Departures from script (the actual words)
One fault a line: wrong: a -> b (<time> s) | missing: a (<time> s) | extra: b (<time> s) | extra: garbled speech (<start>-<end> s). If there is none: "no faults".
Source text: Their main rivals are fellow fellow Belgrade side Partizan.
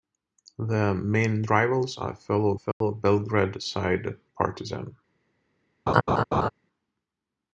no faults